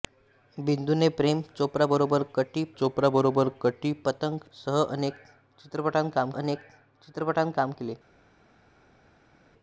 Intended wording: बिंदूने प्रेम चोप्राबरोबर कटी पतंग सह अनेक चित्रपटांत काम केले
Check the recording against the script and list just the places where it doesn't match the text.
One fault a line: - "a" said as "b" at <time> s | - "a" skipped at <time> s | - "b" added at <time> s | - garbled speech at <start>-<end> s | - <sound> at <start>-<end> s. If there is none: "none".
- "चोप्राबरोबर कटी" added at 2.8 s
- "अनेक चित्रपटांत काम" added at 6.3 s